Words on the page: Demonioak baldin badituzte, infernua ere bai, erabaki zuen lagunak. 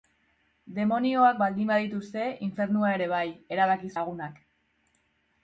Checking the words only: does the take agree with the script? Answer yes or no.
no